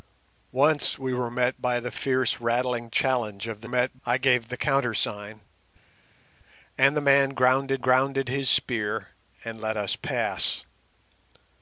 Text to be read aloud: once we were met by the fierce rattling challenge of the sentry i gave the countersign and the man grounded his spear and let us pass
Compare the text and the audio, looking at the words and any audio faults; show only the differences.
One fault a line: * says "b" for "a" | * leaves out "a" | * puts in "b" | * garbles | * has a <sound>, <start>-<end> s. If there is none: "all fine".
* says "met" for "sentry"
* puts in "grounded"